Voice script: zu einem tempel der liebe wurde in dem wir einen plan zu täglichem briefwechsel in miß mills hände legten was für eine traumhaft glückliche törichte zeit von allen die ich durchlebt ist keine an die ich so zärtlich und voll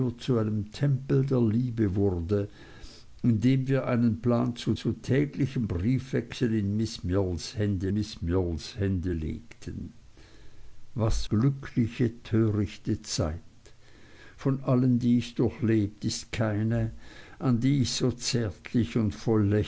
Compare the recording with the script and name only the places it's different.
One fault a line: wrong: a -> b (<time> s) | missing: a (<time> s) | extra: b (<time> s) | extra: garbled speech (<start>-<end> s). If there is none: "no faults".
extra: zu (4.7 s)
wrong: legten was für eine traumhaft -> miß mills hände legten was (7.9 s)